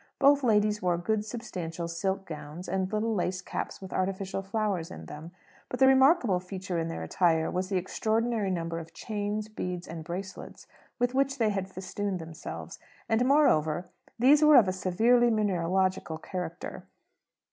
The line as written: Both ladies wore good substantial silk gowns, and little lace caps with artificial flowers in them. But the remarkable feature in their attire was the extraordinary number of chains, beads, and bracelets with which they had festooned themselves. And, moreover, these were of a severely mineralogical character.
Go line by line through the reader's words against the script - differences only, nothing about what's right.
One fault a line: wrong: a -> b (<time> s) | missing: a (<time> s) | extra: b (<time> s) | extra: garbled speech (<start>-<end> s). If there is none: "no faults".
no faults